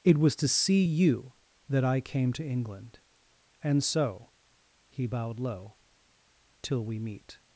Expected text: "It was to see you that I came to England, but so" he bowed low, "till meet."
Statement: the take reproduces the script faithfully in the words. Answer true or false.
false